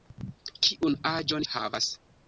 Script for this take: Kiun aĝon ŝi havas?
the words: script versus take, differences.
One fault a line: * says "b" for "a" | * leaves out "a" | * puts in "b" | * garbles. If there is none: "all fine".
* leaves out "ŝi"